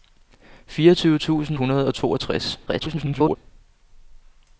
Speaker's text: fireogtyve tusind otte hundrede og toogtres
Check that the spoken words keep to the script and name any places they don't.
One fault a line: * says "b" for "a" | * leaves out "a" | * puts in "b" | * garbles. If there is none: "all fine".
* leaves out "otte"
* garbles